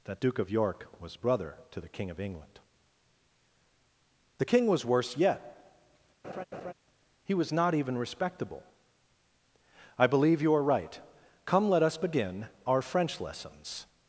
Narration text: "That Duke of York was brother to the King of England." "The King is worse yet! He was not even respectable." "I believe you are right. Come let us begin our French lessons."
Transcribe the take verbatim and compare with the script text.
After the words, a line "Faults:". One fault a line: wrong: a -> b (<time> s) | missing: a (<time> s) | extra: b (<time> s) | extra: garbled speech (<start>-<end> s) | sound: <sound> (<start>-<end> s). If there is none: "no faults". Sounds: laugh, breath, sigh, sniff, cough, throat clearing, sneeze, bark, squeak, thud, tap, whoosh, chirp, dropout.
"That Duke of York was brother to the King of England." "The King was worse yet! He was not even respectable." "I believe you are right. Come let us begin our French lessons."
Faults:
wrong: is -> was (4.7 s)
sound: laugh (6.2-6.7 s)